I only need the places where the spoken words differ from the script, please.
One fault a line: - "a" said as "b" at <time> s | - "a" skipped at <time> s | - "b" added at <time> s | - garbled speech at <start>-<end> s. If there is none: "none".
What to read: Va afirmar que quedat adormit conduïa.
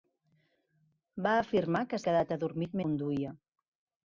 none